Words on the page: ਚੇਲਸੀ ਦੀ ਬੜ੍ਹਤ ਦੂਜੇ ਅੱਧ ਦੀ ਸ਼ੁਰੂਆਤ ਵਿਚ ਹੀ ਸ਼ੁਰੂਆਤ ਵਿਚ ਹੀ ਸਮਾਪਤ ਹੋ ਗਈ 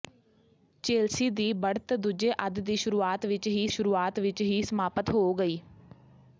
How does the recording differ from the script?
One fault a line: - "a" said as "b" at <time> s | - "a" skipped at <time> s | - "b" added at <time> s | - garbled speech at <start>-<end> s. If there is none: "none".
none